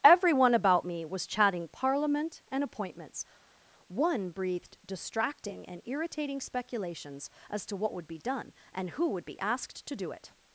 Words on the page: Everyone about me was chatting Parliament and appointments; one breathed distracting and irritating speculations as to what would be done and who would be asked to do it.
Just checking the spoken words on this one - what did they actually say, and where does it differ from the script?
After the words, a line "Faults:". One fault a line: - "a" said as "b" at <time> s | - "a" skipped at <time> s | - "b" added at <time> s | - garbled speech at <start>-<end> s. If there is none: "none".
Everyone about me was chatting Parliament and appointments; one breathed distracting and irritating speculations as to what would be done and who would be asked to do it.
Faults:
none